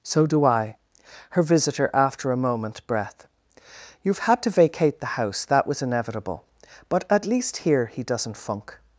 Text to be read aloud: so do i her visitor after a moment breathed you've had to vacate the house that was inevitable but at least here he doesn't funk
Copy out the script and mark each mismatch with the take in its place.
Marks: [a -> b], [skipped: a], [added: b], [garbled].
so do i her visitor after a moment [breathed -> breath] you've had to vacate the house that was inevitable but at least here he doesn't funk